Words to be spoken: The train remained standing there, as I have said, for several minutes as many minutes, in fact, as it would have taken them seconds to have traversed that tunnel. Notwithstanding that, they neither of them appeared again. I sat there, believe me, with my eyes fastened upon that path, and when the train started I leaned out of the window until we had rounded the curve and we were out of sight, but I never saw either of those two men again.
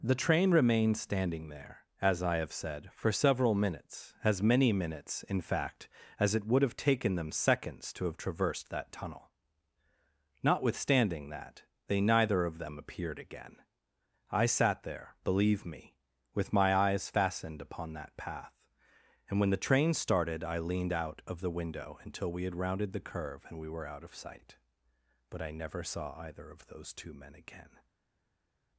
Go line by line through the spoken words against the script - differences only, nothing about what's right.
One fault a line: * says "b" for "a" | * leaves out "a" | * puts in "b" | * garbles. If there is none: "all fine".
all fine